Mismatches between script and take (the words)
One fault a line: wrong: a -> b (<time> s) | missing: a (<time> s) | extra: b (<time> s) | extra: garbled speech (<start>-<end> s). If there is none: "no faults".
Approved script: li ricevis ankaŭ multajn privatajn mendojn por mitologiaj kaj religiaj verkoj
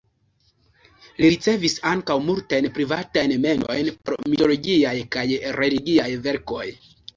no faults